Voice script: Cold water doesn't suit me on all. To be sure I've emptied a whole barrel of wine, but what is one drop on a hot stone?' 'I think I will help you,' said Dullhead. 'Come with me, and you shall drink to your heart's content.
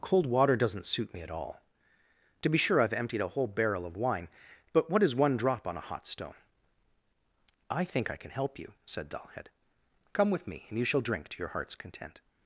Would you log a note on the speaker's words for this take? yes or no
yes